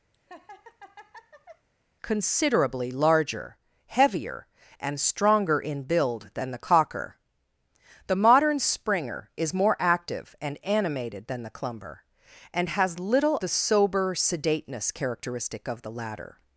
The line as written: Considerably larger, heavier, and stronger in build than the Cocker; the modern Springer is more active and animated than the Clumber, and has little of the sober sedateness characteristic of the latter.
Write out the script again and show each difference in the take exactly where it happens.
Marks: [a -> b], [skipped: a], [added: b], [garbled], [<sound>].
[laugh] Considerably larger, heavier, and stronger in build than the Cocker; the modern Springer is more active and animated than the Clumber, and has little [skipped: of] the sober sedateness characteristic of the latter.